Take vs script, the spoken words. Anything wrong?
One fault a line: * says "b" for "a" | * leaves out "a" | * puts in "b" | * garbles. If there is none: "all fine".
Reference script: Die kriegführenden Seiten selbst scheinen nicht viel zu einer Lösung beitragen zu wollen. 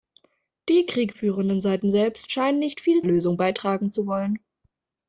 * leaves out "zu einer"